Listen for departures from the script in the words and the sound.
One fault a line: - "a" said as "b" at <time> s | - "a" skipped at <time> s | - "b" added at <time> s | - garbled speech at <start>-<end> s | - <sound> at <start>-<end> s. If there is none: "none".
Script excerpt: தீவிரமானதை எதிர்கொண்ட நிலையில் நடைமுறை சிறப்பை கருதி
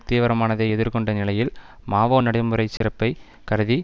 - "மாவோ" added at 1.9 s
- dropout at 2.8-2.8 s